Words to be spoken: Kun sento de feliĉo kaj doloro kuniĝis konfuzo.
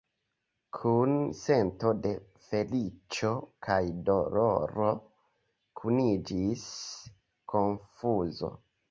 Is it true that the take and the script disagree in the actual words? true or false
false